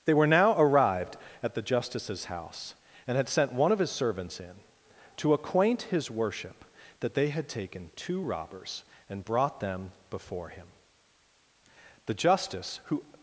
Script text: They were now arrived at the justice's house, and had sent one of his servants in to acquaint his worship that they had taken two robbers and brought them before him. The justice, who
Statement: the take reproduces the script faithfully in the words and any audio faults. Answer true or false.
true